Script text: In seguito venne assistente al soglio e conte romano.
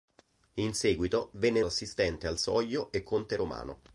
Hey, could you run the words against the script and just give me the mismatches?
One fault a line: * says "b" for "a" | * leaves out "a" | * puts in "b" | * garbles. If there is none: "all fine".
all fine